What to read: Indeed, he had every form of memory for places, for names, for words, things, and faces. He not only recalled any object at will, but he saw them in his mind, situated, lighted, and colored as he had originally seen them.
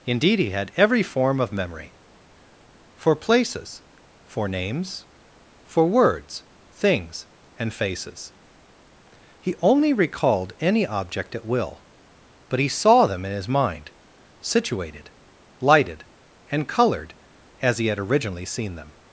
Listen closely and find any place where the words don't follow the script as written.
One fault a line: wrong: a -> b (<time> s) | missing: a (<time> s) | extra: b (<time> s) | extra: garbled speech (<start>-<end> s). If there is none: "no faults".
missing: not (9.6 s)